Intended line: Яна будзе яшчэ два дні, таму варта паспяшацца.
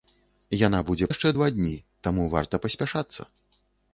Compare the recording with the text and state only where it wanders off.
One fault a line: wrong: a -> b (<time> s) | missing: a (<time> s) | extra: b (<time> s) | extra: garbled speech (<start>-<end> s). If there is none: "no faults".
no faults